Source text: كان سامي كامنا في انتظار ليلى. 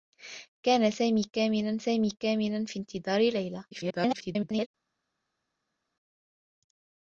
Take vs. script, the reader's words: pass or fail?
fail